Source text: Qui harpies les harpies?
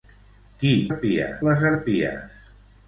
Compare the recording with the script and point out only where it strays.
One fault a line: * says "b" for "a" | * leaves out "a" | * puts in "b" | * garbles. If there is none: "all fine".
all fine